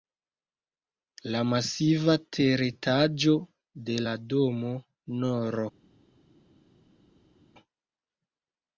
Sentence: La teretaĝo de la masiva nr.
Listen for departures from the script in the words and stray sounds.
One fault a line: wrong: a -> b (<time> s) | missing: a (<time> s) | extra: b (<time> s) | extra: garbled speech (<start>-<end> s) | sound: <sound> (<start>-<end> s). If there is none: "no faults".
extra: masiva (1.5 s)
wrong: masiva -> domo (4.4 s)